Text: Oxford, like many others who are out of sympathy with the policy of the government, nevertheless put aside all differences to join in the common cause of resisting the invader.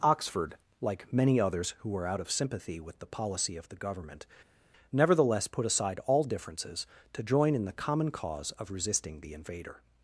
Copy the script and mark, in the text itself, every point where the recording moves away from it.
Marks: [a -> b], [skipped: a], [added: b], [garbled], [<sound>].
Oxford, like many others who [are -> were] out of sympathy with the policy of the government, nevertheless put aside all differences to join in the common cause of resisting the invader.